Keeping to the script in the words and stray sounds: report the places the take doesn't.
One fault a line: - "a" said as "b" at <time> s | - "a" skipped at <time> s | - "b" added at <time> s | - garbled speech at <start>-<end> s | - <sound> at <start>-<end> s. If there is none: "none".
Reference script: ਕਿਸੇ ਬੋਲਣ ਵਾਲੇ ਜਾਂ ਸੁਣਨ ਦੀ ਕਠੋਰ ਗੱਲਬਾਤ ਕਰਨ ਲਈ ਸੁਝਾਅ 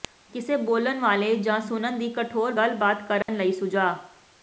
- dropout at 3.2-3.3 s